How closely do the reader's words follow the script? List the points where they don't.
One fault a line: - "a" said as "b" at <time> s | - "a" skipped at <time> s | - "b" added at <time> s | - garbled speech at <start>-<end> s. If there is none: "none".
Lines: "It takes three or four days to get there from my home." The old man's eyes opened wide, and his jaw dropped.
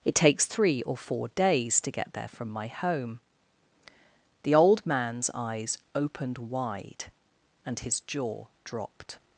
none